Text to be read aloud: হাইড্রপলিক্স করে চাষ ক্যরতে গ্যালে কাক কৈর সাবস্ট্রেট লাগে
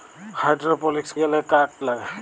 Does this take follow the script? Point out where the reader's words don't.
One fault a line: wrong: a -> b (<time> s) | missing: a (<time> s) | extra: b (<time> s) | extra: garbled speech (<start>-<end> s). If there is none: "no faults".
missing: করে চাষ ক্যরতে (1.1 s)
missing: কৈর সাবস্ট্রেট (1.7 s)